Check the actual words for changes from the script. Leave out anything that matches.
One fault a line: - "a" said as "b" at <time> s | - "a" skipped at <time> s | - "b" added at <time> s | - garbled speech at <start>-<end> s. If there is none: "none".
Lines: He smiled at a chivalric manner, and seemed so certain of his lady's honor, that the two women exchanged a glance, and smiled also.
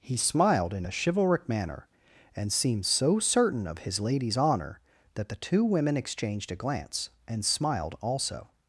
- "at" said as "in" at 0.7 s